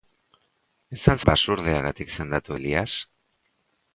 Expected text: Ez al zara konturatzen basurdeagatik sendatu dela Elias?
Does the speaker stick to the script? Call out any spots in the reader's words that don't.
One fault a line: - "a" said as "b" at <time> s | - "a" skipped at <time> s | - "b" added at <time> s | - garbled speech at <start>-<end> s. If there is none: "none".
- "zara konturatzen" skipped at 1.2 s
- "dela" skipped at 2.6 s